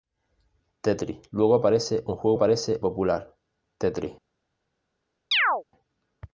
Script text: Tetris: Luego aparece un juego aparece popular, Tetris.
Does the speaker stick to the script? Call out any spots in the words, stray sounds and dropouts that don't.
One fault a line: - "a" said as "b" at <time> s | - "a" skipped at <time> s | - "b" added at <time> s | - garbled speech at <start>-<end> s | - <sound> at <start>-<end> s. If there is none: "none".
- chirp at 5.3-5.6 s